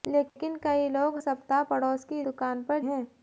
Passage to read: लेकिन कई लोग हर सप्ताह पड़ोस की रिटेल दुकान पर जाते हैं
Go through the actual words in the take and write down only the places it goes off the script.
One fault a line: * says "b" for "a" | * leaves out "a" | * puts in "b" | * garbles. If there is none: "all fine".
* leaves out "हर"
* leaves out "रिटेल"
* leaves out "जाते"